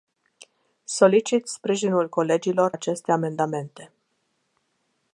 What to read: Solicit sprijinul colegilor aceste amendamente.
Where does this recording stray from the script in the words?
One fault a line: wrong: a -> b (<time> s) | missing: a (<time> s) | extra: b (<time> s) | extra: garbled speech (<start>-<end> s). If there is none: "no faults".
no faults